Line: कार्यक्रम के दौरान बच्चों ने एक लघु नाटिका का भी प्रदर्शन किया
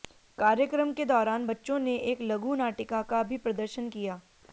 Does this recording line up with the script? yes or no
yes